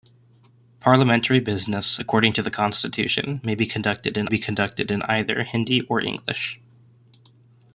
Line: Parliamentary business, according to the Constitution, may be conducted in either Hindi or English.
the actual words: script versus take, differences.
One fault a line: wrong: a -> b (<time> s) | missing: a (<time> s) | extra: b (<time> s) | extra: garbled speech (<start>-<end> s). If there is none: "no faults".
extra: be conducted in (4.2 s)